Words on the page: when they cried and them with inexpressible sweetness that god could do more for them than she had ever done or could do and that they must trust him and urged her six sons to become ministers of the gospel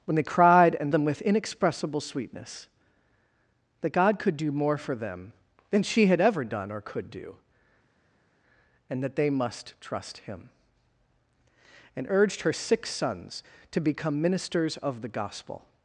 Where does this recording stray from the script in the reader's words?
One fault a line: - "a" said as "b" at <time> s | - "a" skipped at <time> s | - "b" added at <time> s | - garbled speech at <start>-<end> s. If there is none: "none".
none